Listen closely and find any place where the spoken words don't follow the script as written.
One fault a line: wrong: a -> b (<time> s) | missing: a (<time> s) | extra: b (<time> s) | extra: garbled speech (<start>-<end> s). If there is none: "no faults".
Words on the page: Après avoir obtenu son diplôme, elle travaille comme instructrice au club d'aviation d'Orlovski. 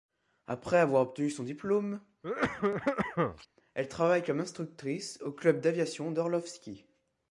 no faults